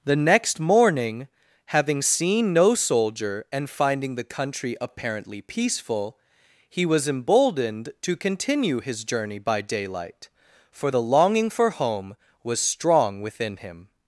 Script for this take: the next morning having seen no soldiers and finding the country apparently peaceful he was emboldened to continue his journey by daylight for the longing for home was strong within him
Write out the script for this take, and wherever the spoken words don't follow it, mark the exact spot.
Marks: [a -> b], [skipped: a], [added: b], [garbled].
the next morning having seen no [soldiers -> soldier] and finding the country apparently peaceful he was emboldened to continue his journey by daylight for the longing for home was strong within him